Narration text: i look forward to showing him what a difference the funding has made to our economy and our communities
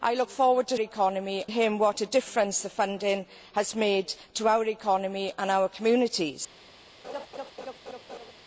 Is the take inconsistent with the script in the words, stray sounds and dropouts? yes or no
yes